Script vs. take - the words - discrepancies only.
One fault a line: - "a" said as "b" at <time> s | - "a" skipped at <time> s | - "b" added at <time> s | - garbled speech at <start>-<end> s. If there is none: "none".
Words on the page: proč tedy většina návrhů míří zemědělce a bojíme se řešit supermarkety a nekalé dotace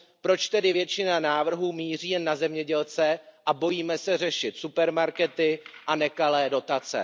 - "jen na" added at 2.1 s